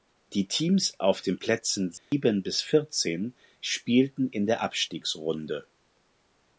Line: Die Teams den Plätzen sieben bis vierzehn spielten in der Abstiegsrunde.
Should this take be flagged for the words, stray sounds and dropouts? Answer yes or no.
yes